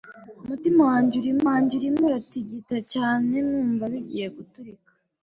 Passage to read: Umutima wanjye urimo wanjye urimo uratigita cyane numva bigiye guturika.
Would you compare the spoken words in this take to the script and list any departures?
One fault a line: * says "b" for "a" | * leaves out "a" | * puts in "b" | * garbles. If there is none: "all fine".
all fine